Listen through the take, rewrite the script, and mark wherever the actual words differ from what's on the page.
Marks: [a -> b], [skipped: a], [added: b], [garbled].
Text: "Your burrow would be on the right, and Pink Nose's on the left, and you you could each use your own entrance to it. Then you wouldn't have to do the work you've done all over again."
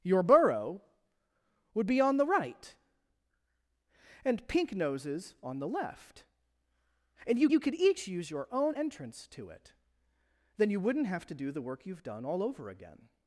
"Your burrow would be on the right, and Pink Nose's on the left, and you you could each use your own entrance to it. Then you wouldn't have to do the work you've done all over again."